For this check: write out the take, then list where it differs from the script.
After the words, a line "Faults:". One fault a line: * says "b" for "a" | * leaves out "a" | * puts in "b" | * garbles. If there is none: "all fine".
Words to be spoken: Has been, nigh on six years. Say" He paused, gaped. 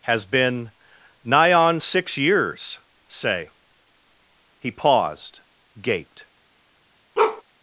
Has been, nigh on six years. Say" He paused, gaped.
Faults:
all fine